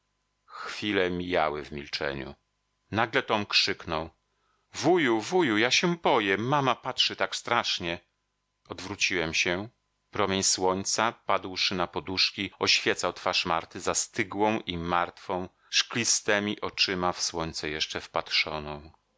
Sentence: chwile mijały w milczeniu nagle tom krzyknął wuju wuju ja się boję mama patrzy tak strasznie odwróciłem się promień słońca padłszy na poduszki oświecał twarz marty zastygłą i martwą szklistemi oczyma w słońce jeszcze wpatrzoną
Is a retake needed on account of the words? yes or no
no